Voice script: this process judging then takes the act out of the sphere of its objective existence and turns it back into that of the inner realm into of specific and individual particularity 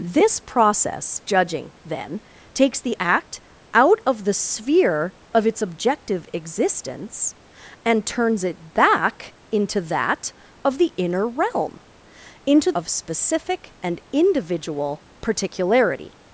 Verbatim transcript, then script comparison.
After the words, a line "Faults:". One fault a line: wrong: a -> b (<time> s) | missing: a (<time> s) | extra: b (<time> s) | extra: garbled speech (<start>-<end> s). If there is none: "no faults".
this process judging then takes the act out of the sphere of its objective existence and turns it back into that of the inner realm into of specific and individual particularity
Faults:
no faults